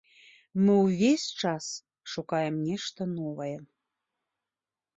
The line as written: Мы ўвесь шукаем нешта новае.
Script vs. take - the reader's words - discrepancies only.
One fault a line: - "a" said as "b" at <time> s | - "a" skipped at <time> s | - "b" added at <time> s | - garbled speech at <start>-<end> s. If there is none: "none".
- "час" added at 1.4 s